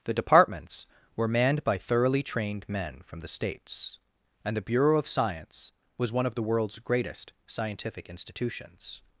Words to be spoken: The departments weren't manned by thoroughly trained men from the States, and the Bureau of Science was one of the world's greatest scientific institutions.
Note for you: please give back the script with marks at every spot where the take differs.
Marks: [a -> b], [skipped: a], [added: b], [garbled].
The departments [weren't -> were] manned by thoroughly trained men from the States, and the Bureau of Science was one of the world's greatest scientific institutions.